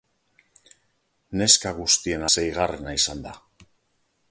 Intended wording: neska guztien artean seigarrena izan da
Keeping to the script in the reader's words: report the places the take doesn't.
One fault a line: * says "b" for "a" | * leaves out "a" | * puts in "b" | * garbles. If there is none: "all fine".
* leaves out "artean"